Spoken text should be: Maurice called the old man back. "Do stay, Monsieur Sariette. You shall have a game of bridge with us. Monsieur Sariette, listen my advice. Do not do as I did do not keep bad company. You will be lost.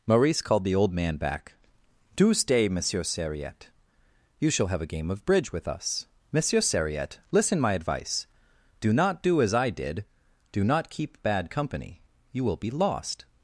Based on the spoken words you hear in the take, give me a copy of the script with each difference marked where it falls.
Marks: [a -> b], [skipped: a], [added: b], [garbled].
Maurice called the old man back. "Do stay, Monsieur Sariette. You shall have a game of bridge with us. Monsieur Sariette, listen my advice. Do not do as I did do not keep bad company. You will be lost.